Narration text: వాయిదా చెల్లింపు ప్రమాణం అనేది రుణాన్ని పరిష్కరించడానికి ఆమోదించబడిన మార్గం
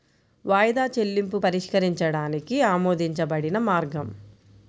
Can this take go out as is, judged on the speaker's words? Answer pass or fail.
fail